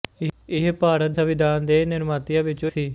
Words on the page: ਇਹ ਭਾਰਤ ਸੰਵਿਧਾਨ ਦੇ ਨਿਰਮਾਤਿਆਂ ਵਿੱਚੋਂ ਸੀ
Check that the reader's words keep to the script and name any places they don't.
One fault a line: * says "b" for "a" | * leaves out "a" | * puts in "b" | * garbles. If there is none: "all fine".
all fine